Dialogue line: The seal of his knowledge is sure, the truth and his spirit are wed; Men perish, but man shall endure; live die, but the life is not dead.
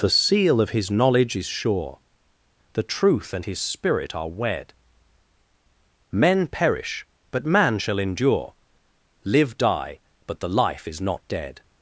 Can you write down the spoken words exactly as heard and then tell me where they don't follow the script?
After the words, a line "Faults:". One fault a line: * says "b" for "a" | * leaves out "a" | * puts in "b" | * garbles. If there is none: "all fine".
The seal of his knowledge is sure, the truth and his spirit are wed; Men perish, but man shall endure; live die, but the life is not dead.
Faults:
all fine